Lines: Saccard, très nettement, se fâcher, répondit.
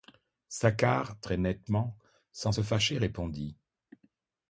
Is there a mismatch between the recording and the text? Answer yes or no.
yes